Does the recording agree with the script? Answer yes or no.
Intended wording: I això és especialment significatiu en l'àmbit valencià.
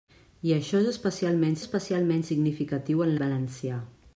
no